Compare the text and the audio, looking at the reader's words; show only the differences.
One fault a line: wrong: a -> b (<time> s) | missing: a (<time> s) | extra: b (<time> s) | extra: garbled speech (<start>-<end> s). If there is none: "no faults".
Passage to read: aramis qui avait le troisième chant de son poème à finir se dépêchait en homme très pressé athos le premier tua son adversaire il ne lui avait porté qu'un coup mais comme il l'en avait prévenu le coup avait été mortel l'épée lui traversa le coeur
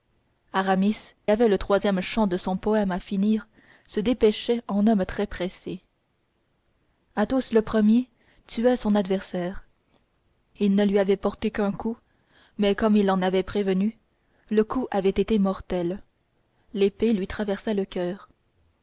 missing: qui (1.1 s)